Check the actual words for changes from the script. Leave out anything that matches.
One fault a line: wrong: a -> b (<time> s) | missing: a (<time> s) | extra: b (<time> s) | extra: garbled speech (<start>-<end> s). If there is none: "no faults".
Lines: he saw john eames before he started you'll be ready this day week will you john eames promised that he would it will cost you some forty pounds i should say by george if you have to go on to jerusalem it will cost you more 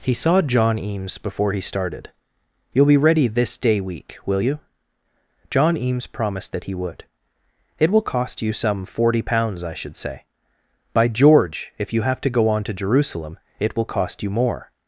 no faults